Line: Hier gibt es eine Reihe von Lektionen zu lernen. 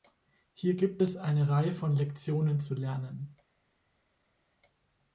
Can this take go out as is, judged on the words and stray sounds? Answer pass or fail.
pass